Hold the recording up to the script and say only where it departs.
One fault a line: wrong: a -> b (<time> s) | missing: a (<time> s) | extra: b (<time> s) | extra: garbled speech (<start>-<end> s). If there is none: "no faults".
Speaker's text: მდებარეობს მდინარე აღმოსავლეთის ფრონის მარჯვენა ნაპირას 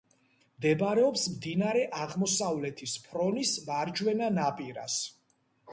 no faults